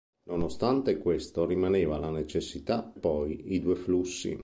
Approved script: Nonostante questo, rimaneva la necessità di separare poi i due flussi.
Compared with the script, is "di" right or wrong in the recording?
wrong